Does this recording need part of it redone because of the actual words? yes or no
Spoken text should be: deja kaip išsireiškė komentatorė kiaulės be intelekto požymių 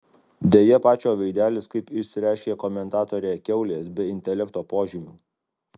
yes